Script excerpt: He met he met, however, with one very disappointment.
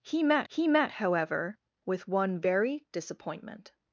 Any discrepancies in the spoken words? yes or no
no